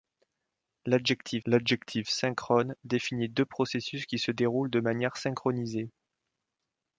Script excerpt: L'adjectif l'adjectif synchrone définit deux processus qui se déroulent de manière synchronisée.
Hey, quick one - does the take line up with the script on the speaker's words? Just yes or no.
yes